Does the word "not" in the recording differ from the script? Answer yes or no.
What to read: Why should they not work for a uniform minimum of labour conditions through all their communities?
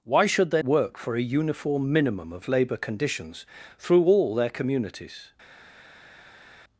yes